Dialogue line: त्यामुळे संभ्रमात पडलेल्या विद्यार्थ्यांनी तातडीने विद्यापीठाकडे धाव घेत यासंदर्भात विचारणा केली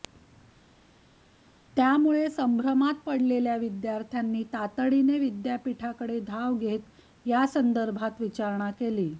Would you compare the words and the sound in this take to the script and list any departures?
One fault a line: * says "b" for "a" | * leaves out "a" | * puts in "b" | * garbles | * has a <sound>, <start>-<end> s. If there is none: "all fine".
all fine